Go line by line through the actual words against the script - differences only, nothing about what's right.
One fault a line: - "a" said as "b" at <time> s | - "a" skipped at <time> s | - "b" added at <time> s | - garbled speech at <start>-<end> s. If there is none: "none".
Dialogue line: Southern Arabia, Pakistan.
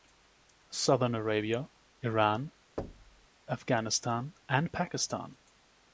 - "Iran Afghanistan and" added at 2.0 s